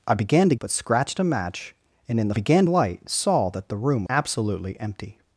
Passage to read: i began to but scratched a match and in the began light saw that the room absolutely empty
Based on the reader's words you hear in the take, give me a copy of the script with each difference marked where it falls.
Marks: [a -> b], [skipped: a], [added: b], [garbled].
i began to but scratched a match and in the began light saw that the room absolutely empty